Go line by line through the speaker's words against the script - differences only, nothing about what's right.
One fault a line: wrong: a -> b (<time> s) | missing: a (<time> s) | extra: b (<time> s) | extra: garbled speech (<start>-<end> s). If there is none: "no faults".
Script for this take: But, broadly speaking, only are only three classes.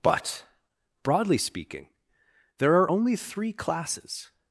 wrong: only -> there (2.6 s)